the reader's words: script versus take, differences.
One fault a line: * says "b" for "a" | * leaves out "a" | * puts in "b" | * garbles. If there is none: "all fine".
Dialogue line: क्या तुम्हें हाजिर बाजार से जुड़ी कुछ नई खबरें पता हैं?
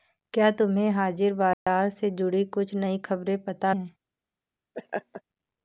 all fine